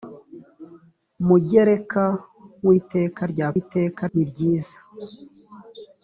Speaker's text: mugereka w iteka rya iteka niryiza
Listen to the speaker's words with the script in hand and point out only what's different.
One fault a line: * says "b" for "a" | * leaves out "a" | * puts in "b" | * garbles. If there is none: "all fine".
all fine